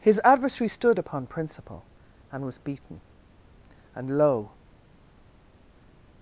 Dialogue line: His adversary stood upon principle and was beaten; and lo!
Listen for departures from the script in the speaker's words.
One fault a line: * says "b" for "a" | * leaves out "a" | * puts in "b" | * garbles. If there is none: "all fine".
all fine